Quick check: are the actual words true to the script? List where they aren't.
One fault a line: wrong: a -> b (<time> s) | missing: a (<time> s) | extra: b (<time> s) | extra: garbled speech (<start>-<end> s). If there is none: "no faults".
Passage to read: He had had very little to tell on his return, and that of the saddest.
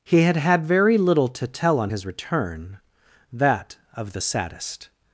missing: and (2.8 s)